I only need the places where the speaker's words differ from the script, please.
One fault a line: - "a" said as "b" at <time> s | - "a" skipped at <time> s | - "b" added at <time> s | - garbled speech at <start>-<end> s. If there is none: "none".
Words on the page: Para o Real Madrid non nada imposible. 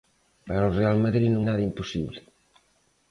none